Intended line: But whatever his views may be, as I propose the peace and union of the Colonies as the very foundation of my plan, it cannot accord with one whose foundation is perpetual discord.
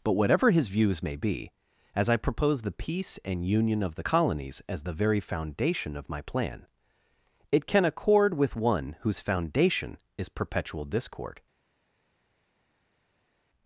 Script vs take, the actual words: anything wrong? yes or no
yes